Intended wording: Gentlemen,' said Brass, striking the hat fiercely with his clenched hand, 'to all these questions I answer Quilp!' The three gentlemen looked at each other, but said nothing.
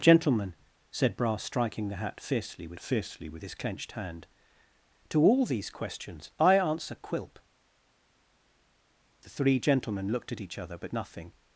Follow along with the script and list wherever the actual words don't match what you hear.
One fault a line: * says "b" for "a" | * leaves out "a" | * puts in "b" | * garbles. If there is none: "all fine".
* puts in "fiercely with"
* leaves out "said"